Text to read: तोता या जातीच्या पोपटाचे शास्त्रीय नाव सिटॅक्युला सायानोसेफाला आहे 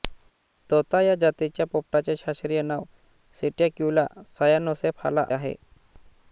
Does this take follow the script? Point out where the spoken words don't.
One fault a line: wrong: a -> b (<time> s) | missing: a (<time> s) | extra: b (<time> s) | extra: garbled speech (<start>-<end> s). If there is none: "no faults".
no faults